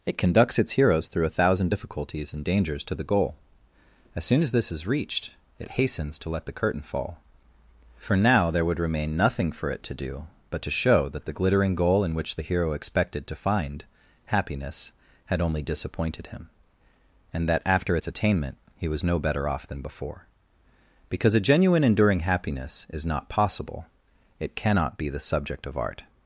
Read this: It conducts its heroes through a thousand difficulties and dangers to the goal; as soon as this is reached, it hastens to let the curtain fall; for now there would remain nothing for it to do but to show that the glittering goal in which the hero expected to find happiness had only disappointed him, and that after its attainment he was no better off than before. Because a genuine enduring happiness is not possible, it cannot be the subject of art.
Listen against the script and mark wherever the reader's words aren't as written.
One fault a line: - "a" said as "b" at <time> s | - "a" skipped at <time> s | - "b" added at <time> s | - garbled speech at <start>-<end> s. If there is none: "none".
none